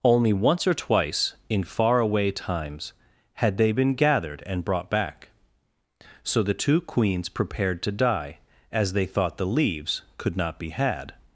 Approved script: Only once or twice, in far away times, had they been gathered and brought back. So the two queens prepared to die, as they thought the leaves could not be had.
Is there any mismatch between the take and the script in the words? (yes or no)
no